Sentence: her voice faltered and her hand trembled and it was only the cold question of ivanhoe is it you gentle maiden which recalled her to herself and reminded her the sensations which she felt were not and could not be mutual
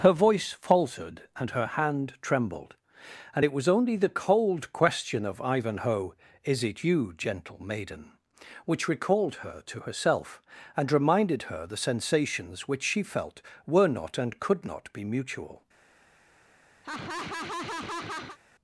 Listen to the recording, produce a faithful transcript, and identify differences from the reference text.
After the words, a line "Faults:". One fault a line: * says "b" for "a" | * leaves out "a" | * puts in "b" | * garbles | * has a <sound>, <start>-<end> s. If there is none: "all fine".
her voice faltered and her hand trembled and it was only the cold question of ivanhoe is it you gentle maiden which recalled her to herself and reminded her the sensations which she felt were not and could not be mutual
Faults:
* has a laugh, 16.8-18.4 s